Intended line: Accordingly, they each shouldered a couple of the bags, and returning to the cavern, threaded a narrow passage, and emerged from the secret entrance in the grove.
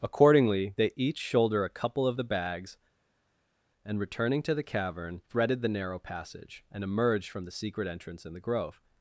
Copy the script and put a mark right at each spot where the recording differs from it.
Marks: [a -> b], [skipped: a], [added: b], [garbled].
Accordingly, they each [shouldered -> shoulder] a couple of the bags, and returning to the cavern, threaded [a -> the] narrow passage, and emerged from the secret entrance in the grove.